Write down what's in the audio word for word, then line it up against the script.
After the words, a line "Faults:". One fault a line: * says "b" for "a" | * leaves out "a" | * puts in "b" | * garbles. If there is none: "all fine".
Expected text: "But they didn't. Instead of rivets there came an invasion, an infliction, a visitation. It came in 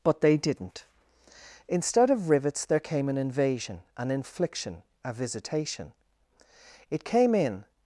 "But they didn't. Instead of rivets there came an invasion, an infliction, a visitation. It came in
Faults:
all fine